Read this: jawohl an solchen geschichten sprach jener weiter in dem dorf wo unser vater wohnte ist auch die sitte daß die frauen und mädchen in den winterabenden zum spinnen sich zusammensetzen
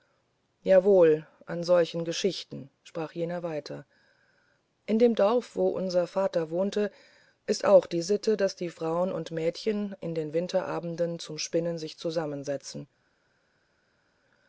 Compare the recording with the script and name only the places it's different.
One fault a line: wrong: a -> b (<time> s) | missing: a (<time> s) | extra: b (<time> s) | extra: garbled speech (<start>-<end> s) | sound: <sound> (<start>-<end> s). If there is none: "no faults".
no faults